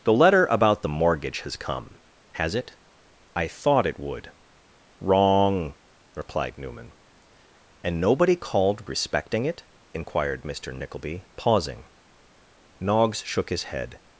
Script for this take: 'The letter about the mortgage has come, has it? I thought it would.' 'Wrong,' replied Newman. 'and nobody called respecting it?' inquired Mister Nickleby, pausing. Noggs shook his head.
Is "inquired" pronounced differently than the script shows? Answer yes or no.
no